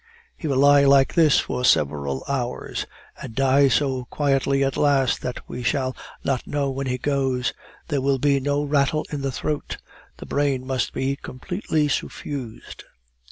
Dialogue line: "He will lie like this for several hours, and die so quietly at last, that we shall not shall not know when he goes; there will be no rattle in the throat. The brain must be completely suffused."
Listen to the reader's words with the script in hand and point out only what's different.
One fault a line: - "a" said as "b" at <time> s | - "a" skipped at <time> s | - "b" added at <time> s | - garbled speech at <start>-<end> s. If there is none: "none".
- "shall not" skipped at 6.5 s